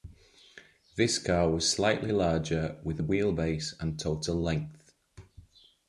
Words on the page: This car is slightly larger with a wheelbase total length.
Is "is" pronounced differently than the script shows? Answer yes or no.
yes